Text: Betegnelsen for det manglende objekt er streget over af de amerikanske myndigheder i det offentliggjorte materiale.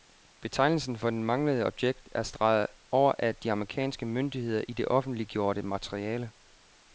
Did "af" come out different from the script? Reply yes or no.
no